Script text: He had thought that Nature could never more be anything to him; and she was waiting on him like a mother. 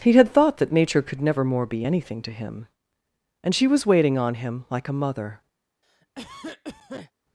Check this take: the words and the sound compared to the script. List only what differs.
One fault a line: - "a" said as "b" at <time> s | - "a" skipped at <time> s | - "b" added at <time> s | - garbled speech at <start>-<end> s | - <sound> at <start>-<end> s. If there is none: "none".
- cough at 5.8-7.1 s